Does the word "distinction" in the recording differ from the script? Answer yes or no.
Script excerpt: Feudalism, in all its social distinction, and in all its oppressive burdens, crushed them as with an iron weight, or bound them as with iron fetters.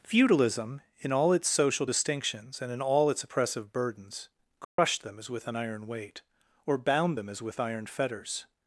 yes